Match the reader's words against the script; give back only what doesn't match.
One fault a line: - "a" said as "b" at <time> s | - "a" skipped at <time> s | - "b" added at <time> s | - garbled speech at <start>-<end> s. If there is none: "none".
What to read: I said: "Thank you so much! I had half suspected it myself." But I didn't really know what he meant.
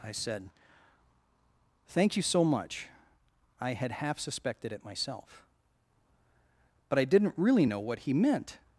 none